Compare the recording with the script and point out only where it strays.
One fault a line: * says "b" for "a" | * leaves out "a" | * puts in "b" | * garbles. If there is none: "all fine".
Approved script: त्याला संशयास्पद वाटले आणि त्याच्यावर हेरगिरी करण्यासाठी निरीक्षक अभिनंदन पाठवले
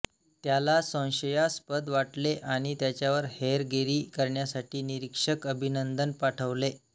all fine